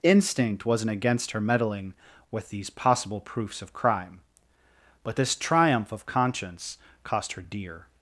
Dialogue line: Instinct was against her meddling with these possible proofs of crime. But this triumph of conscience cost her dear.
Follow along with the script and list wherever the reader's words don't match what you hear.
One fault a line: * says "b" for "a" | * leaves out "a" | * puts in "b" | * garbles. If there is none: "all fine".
* says "wasn't" for "was"